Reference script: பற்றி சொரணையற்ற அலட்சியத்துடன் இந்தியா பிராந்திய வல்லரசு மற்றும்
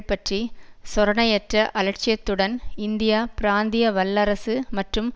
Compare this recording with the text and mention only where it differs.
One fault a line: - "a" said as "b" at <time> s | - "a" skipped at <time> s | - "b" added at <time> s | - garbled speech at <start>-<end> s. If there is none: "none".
none